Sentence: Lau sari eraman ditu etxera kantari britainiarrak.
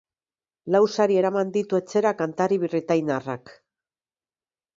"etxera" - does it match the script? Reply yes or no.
yes